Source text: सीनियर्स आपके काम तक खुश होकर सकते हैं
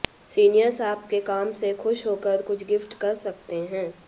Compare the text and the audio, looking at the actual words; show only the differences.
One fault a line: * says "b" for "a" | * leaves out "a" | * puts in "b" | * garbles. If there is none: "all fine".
* says "से" for "तक"
* puts in "कुछ गिफ्ट कर"